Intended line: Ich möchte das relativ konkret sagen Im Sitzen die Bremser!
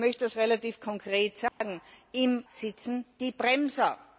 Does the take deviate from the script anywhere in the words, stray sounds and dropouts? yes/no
yes